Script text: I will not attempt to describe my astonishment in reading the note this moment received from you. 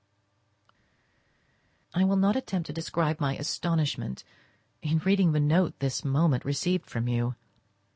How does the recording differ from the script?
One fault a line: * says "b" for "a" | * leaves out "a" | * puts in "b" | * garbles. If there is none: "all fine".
all fine